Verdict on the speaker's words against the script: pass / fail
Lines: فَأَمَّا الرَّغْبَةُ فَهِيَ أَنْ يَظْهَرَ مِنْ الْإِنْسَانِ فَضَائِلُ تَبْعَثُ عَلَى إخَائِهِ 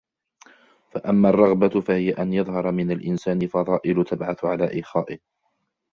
pass